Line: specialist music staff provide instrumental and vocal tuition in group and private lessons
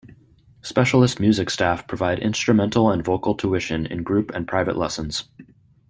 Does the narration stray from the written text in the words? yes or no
no